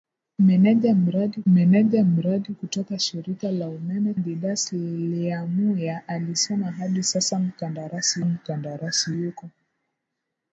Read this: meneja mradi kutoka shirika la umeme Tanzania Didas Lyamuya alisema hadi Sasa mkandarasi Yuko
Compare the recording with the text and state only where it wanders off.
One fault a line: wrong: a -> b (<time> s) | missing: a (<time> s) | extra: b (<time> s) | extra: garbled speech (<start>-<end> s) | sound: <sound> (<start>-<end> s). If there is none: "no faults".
extra: meneja mradi (1.5 s)
missing: Tanzania (4.1 s)
extra: mkandarasi (8.2 s)